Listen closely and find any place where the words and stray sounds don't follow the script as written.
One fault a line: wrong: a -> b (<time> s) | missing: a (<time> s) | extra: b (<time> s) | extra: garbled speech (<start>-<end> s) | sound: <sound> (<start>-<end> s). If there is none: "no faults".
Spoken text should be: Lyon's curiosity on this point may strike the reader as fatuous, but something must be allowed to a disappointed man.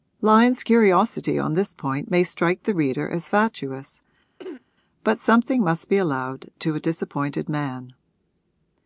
sound: throat clearing (4.4-4.6 s)